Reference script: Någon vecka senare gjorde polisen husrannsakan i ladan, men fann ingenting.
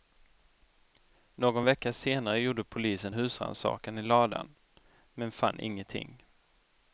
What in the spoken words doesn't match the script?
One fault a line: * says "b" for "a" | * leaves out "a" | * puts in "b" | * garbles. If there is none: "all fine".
all fine